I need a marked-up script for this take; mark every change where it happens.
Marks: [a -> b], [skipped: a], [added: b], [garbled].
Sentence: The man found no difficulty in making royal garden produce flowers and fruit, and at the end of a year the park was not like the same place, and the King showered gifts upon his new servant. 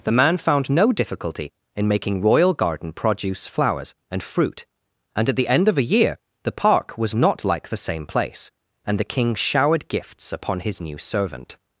The man found no difficulty in making royal garden produce flowers and fruit, and at the end of a year the park was not like the same place, and the King showered gifts upon his new servant.